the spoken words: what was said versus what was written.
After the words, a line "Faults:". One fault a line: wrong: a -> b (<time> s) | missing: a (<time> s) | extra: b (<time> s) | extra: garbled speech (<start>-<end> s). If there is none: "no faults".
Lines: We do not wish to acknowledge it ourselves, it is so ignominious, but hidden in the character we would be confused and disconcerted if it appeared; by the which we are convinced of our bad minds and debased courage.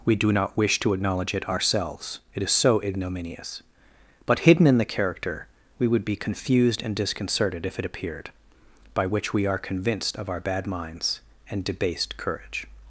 We do not wish to acknowledge it ourselves, it is so ignominious, but hidden in the character we would be confused and disconcerted if it appeared; by which we are convinced of our bad minds and debased courage.
Faults:
missing: the (9.1 s)